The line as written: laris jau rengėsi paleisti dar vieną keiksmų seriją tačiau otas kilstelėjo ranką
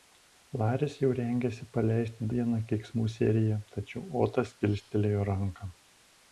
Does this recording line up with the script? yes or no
no